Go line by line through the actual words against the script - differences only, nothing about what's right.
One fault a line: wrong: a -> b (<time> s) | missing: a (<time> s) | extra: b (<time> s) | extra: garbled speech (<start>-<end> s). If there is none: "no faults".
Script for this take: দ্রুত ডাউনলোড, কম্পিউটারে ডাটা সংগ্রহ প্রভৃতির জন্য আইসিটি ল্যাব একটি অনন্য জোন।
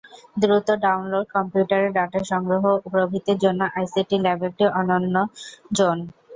no faults